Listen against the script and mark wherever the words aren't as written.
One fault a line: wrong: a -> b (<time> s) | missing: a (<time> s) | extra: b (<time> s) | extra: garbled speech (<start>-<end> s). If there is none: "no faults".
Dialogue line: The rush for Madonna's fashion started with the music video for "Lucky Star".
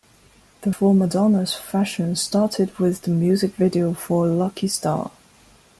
missing: rush (0.7 s)